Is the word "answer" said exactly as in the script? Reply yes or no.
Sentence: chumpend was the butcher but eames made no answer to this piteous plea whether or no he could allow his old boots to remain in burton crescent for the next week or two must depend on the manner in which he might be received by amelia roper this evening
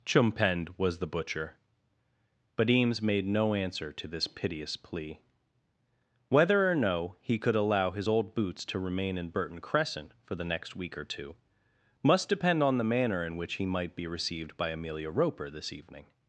yes